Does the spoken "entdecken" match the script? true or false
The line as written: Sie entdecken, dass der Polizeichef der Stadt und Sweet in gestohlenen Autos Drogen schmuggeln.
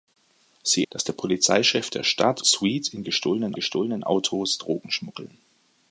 false